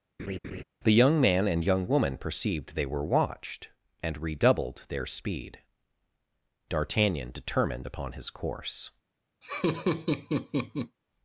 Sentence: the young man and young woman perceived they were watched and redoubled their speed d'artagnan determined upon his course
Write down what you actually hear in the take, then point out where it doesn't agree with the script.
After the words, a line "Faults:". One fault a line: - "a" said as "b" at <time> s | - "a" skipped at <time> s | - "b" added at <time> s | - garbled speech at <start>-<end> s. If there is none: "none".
the young man and young woman perceived they were watched and redoubled their speed d'artagnan determined upon his course
Faults:
none